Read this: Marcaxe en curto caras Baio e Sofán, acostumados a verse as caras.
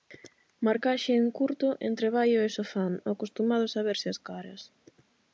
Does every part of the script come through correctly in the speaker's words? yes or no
no